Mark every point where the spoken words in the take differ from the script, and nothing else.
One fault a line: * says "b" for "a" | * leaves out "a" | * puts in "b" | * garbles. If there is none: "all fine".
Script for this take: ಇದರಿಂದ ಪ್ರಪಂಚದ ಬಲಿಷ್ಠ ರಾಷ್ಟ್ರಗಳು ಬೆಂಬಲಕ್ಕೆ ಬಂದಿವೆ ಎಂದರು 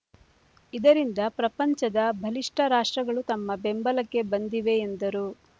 * puts in "ತಮ್ಮ"